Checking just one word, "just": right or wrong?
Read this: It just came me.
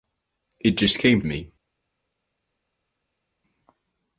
right